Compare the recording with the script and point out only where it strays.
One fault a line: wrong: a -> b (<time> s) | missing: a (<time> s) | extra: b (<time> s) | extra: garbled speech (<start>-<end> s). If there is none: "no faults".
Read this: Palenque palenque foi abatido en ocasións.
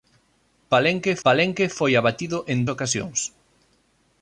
no faults